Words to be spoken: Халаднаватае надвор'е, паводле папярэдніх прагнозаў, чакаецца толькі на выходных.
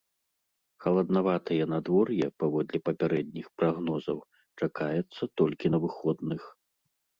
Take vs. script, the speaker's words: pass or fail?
pass